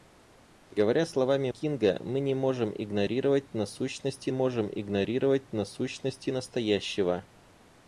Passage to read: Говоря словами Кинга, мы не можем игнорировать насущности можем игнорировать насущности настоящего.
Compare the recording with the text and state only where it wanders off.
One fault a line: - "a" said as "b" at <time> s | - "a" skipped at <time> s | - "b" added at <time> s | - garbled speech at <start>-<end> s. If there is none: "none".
none